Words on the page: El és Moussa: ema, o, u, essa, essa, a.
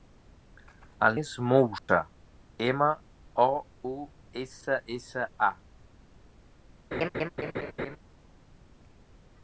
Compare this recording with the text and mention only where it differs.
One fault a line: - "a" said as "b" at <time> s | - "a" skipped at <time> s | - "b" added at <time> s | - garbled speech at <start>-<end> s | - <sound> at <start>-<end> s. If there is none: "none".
- dropout at 1.8-1.9 s
- laugh at 6.9-8.0 s